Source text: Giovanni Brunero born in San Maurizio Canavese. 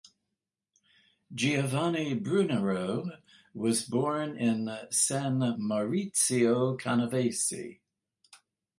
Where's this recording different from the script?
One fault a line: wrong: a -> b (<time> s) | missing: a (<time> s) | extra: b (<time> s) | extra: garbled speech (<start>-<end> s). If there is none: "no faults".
extra: was (3.5 s)